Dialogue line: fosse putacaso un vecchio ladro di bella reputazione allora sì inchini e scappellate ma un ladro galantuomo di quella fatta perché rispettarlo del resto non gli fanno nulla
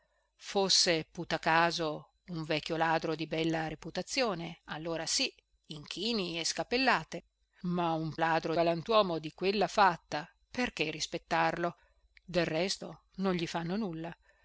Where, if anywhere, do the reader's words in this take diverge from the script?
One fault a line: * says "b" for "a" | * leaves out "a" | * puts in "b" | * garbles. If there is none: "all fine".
all fine